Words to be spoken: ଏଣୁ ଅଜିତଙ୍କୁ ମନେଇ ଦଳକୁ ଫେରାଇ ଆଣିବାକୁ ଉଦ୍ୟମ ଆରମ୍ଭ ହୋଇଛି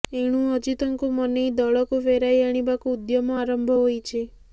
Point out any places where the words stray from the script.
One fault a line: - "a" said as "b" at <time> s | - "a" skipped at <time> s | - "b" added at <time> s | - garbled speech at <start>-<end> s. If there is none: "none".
none